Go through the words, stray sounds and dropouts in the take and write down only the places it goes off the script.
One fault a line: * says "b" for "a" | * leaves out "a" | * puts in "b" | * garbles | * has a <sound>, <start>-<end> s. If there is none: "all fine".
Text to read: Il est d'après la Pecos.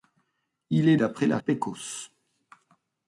all fine